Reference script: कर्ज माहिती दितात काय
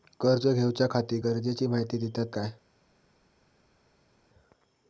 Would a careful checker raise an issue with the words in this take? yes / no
yes